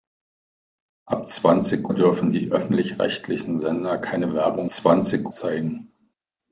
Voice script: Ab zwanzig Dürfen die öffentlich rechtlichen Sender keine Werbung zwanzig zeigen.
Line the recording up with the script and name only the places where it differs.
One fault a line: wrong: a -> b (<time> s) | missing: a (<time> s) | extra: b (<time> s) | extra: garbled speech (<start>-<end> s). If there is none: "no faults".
no faults